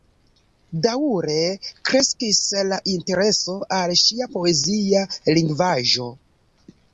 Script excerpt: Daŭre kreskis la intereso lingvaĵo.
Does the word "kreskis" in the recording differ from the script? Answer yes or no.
no